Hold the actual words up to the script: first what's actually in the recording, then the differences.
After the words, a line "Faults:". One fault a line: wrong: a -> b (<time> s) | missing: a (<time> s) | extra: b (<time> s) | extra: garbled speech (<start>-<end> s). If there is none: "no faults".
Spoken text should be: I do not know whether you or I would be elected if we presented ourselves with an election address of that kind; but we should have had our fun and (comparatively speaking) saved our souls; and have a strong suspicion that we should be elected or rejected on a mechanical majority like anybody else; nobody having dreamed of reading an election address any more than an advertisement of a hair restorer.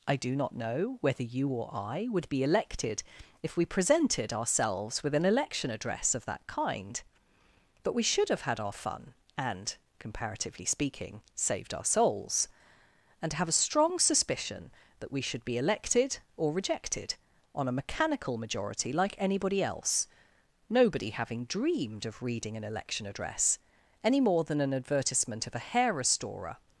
I do not know whether you or I would be elected if we presented ourselves with an election address of that kind; but we should have had our fun and (comparatively speaking) saved our souls; and have a strong suspicion that we should be elected or rejected on a mechanical majority like anybody else; nobody having dreamed of reading an election address any more than an advertisement of a hair restorer.
Faults:
no faults